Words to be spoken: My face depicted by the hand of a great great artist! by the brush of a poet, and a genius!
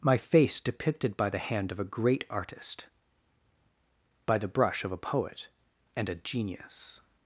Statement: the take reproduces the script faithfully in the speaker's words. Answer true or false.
false